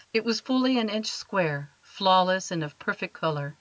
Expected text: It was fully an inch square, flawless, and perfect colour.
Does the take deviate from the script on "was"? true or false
false